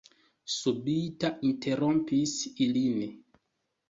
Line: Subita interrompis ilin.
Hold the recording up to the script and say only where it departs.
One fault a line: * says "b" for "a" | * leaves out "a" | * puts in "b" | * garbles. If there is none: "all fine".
all fine